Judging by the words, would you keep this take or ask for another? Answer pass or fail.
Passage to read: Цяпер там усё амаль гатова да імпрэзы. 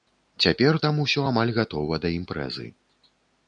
pass